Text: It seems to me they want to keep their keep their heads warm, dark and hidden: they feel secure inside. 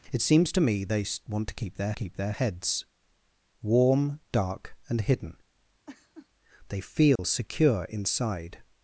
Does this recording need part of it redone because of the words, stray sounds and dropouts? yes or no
yes